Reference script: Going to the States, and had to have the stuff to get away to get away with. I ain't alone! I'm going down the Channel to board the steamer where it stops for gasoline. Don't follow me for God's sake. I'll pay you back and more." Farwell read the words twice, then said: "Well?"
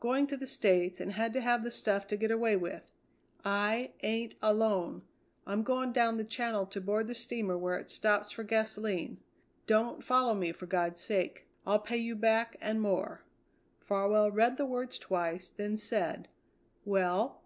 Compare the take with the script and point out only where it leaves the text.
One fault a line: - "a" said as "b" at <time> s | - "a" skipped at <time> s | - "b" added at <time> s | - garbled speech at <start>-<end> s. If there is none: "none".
- "to get away" skipped at 2.5 s